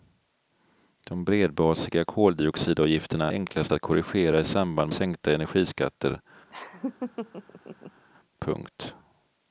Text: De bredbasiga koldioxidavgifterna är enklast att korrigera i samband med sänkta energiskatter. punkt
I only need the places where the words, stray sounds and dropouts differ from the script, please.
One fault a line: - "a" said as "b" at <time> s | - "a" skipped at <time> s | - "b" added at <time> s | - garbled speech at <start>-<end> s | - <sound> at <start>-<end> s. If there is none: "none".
- "är" skipped at 3.3 s
- "med" skipped at 4.9 s
- laugh at 6.5-8.0 s